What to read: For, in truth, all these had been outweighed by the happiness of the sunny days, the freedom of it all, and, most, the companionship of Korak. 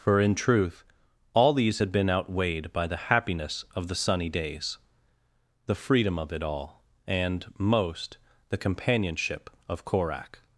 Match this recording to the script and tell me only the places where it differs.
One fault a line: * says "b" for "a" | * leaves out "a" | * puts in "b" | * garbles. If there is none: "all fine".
all fine